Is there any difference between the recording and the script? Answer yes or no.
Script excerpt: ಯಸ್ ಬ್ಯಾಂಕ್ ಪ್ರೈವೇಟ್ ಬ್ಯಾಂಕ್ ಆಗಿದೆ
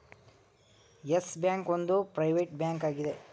yes